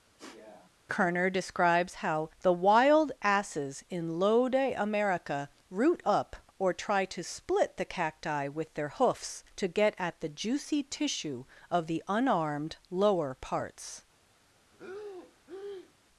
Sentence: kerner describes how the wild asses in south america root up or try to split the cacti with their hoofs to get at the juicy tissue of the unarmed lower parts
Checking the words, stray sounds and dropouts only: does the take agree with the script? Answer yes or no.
no